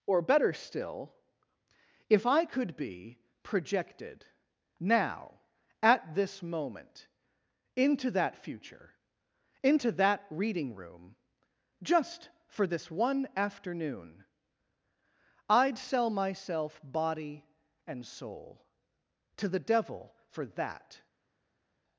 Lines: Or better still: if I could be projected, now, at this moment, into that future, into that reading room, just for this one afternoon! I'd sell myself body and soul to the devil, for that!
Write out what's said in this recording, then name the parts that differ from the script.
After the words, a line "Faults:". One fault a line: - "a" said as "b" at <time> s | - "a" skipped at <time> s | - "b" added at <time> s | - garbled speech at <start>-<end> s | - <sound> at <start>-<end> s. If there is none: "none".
Or better still: if I could be projected, now, at this moment, into that future, into that reading room, just for this one afternoon! I'd sell myself body and soul to the devil, for that!
Faults:
none